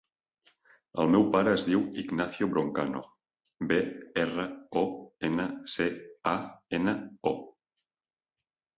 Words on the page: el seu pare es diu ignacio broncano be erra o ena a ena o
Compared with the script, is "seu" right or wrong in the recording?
wrong